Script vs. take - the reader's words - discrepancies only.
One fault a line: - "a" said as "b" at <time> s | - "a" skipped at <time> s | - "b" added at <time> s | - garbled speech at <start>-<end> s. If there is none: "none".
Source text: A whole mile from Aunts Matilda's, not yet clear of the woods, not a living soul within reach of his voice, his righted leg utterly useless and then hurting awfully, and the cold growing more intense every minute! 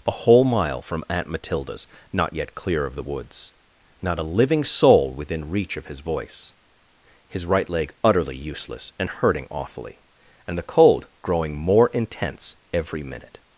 - "Aunts" said as "Aunt" at 1.1 s
- "righted" said as "right" at 7.4 s
- "then" skipped at 9.1 s